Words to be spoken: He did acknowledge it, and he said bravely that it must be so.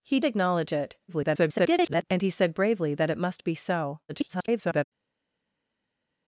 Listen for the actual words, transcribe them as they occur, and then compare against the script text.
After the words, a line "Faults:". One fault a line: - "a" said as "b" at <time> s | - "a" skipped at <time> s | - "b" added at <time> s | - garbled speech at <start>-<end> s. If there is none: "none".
He acknowledge it, [garbled] and he said bravely that it must be so. [garbled]
Faults:
- "did" skipped at 0.2 s
- garbled speech at 1.1-2.0 s
- garbled speech at 4.1-4.8 s